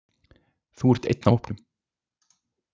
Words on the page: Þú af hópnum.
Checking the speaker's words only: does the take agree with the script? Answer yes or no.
no